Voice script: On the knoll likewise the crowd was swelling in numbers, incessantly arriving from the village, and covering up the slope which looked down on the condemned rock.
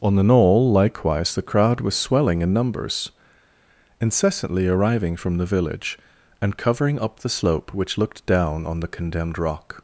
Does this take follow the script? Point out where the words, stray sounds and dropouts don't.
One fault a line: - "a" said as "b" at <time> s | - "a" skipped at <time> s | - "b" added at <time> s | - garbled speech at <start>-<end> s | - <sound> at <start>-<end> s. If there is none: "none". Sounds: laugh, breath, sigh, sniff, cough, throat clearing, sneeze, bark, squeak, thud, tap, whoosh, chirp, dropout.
none